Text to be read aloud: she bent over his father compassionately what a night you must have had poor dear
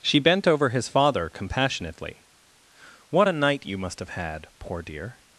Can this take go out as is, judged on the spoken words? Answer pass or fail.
pass